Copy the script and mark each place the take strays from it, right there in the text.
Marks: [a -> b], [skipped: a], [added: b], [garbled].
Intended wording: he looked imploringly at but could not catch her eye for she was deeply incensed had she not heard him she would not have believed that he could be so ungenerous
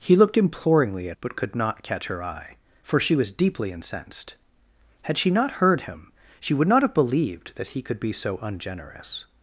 he looked imploringly at but could not catch her eye for she was deeply incensed had she not heard him she would not have believed that he could be so ungenerous